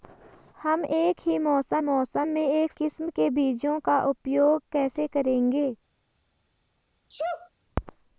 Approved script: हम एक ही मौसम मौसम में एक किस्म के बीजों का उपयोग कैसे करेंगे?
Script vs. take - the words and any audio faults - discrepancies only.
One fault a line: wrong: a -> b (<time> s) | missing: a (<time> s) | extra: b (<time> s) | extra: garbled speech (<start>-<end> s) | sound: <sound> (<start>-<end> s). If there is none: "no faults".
sound: sneeze (7.1-7.5 s)